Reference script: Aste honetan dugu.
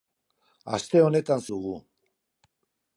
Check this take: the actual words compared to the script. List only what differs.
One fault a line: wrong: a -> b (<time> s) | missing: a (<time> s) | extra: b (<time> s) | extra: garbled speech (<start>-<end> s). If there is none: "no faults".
no faults